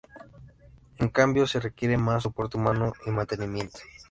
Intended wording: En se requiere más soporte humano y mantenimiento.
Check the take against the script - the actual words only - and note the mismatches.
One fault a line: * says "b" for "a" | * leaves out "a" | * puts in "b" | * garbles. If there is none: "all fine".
* puts in "cambio"